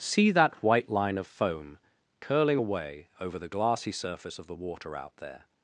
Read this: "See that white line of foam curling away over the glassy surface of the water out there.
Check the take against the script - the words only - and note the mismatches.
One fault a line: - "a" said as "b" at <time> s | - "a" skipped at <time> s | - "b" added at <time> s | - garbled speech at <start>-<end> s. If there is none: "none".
none